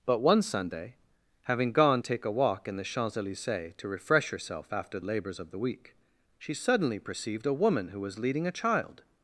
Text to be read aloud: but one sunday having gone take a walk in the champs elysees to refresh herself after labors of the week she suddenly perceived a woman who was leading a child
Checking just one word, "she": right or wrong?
right